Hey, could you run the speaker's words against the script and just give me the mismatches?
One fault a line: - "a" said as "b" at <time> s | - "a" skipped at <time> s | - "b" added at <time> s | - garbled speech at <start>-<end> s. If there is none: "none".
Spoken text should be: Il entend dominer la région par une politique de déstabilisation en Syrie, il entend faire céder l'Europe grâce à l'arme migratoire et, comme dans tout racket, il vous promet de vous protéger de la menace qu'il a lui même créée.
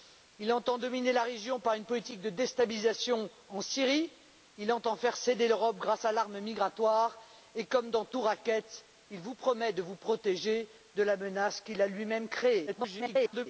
- garbled speech at 12.7-13.5 s